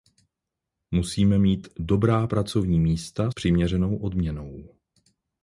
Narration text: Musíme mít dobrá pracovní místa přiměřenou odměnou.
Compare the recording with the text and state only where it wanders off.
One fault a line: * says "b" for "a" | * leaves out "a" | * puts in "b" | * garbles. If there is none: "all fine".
all fine